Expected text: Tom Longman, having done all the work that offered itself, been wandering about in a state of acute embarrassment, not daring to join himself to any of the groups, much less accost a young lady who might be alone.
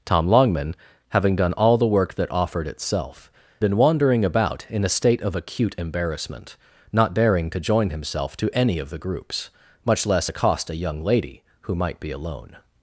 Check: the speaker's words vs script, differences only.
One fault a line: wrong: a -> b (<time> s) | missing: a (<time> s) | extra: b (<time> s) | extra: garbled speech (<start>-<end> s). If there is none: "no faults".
no faults